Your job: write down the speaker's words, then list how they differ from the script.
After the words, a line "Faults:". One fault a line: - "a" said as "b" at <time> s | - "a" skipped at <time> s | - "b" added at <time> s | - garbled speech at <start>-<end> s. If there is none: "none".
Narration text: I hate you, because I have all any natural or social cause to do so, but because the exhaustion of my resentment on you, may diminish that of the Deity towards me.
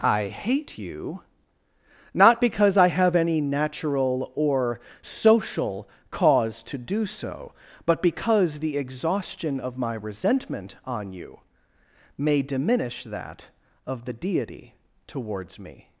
I hate you, not because I have any natural or social cause to do so, but because the exhaustion of my resentment on you, may diminish that of the Deity towards me.
Faults:
- "not" added at 2.1 s
- "all" skipped at 3.1 s